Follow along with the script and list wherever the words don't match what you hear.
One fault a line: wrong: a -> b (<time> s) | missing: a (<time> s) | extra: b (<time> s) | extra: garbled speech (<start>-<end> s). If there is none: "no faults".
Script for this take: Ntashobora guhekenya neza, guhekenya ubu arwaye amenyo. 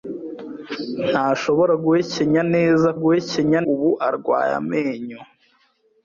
no faults